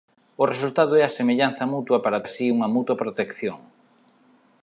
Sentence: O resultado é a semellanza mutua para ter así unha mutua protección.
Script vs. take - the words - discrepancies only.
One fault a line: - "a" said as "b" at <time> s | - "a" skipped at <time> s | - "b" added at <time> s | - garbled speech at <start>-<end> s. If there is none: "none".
- "ter" skipped at 2.2 s